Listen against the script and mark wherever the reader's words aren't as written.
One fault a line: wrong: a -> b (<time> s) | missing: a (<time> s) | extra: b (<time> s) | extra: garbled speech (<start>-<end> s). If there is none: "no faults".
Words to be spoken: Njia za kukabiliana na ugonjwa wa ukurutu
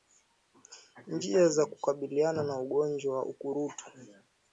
no faults